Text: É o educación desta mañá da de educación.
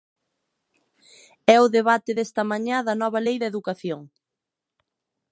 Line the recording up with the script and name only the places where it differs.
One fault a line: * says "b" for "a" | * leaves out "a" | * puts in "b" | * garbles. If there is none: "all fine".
* says "debate" for "educación"
* puts in "nova lei"